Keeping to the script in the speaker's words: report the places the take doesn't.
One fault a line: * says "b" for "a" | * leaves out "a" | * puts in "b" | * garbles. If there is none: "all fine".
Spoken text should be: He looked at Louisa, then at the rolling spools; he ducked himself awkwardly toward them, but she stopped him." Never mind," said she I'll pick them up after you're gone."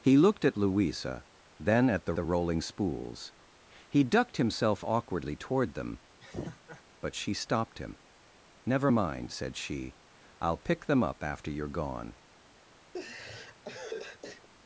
* puts in "the"